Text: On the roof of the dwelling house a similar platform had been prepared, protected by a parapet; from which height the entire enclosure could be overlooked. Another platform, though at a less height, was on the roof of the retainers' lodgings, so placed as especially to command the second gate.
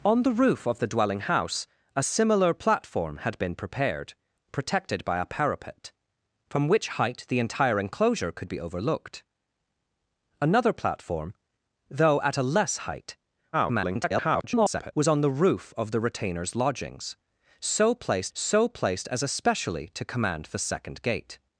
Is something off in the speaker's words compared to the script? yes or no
yes